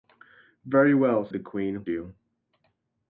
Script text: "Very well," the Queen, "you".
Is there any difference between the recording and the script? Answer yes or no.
no